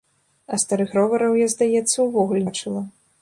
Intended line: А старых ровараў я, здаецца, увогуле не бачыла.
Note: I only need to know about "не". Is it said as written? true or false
false